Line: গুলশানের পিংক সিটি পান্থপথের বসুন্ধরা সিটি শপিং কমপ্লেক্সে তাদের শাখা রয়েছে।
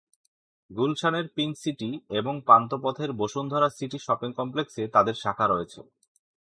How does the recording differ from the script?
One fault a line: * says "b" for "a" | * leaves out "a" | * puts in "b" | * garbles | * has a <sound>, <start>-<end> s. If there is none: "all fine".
* puts in "এবং"